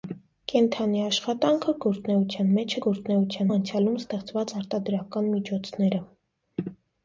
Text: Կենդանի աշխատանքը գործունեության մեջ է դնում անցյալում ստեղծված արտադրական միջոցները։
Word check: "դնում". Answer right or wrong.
wrong